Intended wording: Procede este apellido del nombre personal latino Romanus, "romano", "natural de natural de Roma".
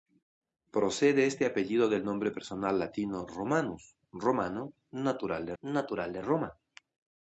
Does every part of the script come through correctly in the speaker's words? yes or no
yes